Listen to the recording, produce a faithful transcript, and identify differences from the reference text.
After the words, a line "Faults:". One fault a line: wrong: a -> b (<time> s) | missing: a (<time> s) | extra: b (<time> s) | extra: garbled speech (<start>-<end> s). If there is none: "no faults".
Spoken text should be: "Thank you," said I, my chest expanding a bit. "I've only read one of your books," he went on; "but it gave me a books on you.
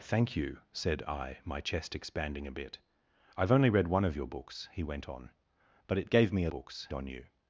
"Thank you," said I, my chest expanding a bit. "I've only read one of your books," he went on; "but it gave me a books on you.
Faults:
no faults